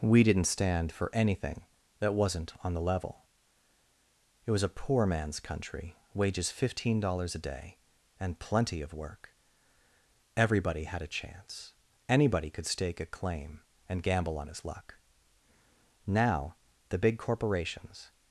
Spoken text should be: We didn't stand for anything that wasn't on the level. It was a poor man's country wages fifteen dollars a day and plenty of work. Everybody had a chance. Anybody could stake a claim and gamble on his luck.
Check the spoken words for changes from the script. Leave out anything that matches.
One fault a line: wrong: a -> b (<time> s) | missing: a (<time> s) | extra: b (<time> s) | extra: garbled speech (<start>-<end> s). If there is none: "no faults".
extra: Now the big corporations (16.1 s)